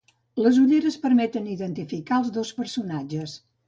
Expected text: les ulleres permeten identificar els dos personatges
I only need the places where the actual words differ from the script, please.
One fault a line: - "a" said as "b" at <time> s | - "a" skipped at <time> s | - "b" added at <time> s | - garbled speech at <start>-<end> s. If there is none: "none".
none